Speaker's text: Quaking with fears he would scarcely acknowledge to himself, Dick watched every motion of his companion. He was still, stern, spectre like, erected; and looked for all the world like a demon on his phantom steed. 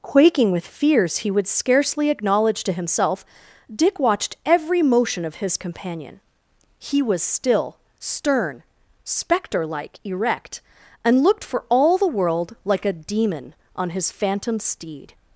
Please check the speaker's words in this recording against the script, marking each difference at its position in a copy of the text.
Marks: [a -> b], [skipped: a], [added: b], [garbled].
Quaking with fears he would scarcely acknowledge to himself, Dick watched every motion of his companion. He was still, stern, spectre like, [erected; -> erect] and looked for all the world like a demon on his phantom steed.